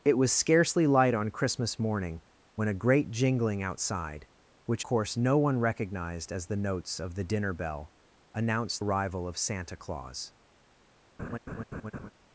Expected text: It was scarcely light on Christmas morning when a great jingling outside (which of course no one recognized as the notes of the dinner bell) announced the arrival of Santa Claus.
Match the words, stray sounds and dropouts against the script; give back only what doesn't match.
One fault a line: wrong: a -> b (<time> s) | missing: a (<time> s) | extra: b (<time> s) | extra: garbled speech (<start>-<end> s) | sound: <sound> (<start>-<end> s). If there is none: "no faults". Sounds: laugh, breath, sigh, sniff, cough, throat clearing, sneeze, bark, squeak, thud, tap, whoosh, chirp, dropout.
missing: of (4.8 s)
missing: the (8.8 s)
sound: laugh (11.2-12.1 s)